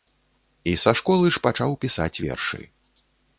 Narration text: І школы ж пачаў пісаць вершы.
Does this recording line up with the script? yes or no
no